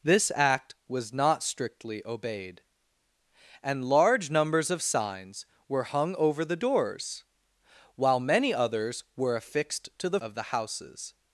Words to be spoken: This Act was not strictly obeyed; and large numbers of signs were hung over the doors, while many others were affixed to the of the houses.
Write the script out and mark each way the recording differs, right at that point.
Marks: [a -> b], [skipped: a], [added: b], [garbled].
This Act was not strictly obeyed; and large numbers of signs were hung over the doors, while many others were affixed to the of the houses.